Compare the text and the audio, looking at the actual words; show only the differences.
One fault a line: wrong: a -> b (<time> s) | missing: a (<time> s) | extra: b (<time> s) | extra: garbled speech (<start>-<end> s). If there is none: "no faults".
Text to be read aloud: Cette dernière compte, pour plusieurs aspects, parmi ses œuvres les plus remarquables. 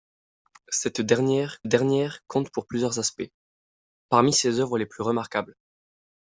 extra: dernière (1.6 s)